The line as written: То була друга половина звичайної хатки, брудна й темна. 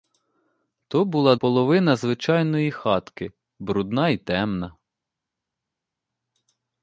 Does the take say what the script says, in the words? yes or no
no